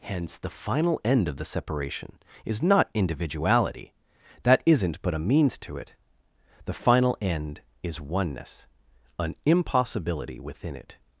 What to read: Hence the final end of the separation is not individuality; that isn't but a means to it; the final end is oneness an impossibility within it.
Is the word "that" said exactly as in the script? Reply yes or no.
yes